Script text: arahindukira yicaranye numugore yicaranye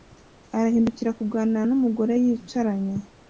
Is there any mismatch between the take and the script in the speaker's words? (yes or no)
yes